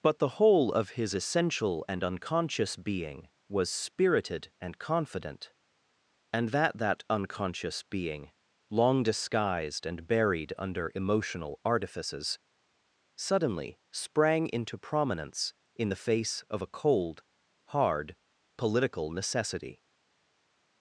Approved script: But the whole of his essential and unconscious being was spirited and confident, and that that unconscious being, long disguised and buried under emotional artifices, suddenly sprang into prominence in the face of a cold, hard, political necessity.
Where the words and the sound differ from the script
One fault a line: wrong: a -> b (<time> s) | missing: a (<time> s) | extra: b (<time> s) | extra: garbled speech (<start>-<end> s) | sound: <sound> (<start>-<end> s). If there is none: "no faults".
no faults